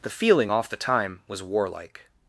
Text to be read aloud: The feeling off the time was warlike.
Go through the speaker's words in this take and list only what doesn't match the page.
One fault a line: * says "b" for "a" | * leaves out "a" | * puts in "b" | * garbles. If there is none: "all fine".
all fine